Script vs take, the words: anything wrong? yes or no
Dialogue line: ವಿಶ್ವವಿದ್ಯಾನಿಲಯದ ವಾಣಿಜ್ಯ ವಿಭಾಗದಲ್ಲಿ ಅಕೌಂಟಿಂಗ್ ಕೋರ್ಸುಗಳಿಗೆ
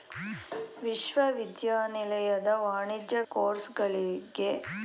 yes